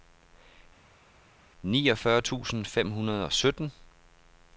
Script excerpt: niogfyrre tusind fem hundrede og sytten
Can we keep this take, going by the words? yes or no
yes